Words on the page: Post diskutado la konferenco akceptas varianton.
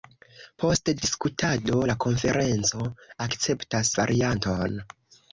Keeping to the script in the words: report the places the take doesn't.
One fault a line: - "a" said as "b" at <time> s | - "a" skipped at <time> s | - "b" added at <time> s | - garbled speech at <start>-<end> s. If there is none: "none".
none